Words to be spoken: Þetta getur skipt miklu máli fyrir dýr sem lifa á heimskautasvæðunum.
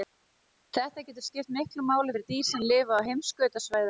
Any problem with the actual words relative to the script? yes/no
no